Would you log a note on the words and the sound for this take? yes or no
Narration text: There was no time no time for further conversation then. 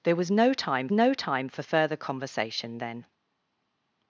no